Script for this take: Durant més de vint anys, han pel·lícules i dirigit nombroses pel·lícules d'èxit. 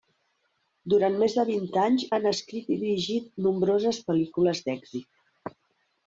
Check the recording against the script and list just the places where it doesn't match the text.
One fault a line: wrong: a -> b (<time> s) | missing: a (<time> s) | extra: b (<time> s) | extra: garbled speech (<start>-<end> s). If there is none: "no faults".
wrong: pel·lícules -> escrit (2.3 s)